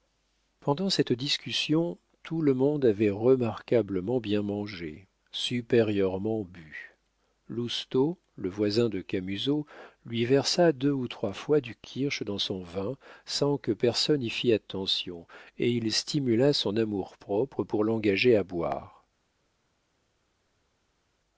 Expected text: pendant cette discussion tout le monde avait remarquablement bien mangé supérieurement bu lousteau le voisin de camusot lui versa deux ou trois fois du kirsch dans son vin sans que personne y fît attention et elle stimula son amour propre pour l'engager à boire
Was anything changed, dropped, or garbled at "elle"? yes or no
yes